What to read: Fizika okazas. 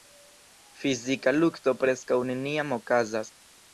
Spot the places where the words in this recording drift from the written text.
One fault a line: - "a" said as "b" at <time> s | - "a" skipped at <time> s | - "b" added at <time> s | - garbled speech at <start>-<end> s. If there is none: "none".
- "lukto preskaŭ neniam" added at 1.4 s